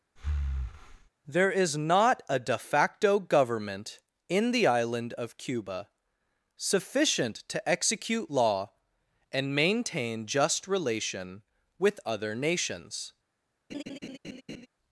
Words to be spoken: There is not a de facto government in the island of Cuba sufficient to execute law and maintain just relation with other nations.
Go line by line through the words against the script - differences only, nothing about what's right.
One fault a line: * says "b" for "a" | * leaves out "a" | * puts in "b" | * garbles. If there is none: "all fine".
all fine